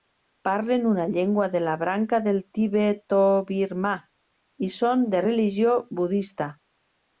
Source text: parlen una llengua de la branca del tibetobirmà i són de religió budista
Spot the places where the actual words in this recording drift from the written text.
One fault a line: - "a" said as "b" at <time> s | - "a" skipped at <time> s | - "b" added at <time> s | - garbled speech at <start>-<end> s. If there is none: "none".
none